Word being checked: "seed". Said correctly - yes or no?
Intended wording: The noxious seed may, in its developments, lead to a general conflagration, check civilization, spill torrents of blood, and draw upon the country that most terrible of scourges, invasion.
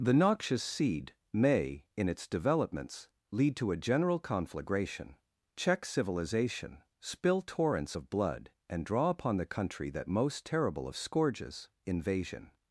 yes